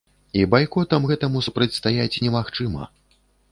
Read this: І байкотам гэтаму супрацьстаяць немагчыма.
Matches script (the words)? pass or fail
pass